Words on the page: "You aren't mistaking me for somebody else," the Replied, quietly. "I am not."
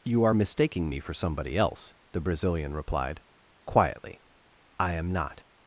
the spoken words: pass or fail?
fail